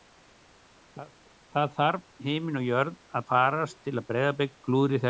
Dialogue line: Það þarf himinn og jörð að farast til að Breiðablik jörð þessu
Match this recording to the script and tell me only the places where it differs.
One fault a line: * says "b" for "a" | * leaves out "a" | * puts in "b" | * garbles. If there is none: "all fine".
* says "klúðri" for "jörð"